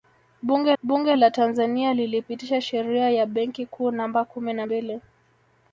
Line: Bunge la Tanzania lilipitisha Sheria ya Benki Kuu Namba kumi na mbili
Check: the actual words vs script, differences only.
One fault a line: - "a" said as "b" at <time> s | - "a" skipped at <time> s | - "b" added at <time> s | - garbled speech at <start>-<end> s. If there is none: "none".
- "bunge" added at 0.8 s